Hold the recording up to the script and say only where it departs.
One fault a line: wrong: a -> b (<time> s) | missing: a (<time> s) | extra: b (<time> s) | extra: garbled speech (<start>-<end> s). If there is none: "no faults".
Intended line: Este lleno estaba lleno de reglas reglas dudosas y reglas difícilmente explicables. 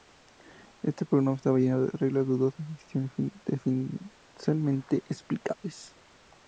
wrong: lleno -> programa (1.1 s)
missing: reglas (2.2 s)
wrong: reglas -> decisiones (2.7 s)